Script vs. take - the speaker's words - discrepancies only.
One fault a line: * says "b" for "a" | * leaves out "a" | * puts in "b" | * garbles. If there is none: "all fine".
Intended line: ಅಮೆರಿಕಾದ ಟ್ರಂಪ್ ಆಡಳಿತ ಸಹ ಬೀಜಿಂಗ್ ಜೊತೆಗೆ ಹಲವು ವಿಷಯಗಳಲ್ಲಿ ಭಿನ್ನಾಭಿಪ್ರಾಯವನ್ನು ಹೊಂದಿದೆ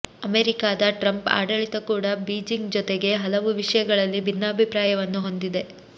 * says "ಕೂಡ" for "ಸಹ"